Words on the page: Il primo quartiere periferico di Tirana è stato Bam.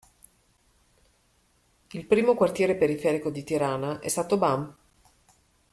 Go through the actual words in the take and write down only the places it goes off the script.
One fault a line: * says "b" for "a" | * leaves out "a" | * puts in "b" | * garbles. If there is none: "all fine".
all fine